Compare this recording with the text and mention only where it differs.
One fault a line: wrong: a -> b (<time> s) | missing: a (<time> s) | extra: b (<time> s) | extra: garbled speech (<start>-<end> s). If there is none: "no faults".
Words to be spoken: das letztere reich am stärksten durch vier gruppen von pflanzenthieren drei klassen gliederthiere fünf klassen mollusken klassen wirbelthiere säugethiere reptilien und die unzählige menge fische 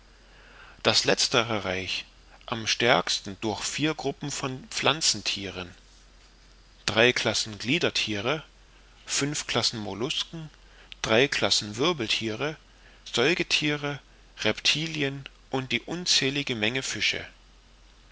extra: drei (11.0 s)